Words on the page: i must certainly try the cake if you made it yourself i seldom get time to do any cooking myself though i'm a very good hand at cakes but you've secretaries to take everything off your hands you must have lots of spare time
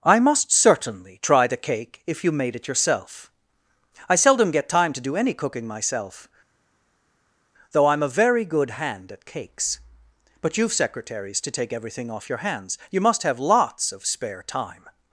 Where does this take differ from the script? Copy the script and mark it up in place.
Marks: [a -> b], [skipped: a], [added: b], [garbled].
i must certainly try the cake if you made it yourself i seldom get time to do any cooking myself though i'm a very good hand at cakes but you've secretaries to take everything off your hands you must have lots of spare time